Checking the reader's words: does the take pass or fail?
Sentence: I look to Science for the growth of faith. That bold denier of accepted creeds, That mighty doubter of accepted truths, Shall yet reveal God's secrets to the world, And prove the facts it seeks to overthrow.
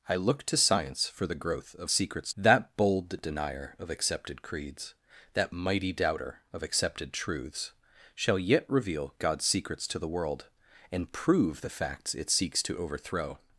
fail